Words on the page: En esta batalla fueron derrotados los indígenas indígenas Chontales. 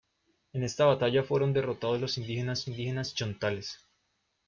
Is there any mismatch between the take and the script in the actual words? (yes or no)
no